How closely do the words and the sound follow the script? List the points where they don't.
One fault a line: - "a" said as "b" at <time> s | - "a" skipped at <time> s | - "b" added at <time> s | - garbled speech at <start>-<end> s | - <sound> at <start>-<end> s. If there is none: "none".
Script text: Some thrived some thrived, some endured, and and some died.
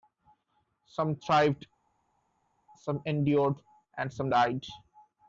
- "thrived some" skipped at 3.0 s
- "and" skipped at 4.1 s